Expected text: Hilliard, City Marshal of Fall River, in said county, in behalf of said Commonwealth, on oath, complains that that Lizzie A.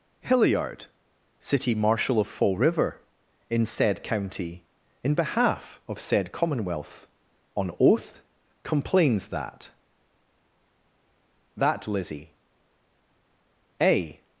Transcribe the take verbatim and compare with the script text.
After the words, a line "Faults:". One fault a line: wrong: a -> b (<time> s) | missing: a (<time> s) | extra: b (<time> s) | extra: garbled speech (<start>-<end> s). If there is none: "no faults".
Hilliard, City Marshal of Fall River, in said county, in behalf of said Commonwealth, on oath, complains that that Lizzie A.
Faults:
no faults